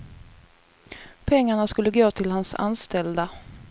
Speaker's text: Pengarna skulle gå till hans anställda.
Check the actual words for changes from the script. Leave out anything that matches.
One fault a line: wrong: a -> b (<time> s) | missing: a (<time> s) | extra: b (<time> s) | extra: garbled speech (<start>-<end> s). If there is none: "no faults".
no faults